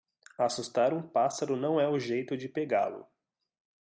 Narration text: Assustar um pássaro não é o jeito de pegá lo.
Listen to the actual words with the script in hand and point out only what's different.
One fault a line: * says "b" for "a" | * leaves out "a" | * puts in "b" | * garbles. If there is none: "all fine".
all fine